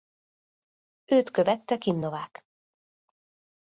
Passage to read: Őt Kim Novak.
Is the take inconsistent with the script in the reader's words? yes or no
yes